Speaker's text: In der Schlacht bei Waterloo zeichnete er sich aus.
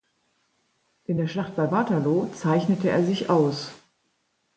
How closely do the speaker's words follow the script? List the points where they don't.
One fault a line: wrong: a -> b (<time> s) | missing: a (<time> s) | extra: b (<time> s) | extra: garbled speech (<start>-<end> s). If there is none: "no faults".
no faults